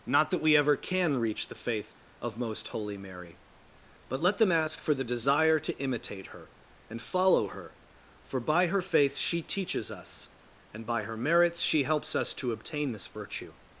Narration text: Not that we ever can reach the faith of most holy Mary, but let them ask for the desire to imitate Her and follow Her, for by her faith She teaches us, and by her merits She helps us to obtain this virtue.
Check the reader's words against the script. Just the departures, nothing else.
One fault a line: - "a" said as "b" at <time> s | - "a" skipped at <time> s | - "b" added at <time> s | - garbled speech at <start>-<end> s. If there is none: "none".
none